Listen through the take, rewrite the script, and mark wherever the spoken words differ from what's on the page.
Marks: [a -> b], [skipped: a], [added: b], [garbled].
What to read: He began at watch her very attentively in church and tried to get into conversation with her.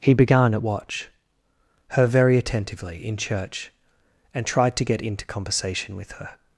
He began at watch her very attentively in church and tried to get into conversation with her.